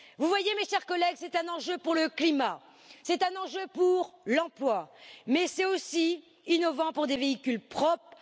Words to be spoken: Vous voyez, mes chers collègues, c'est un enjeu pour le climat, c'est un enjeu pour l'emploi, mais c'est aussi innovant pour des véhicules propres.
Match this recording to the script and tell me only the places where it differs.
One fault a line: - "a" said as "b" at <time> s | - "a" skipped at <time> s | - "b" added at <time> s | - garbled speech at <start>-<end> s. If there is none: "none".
none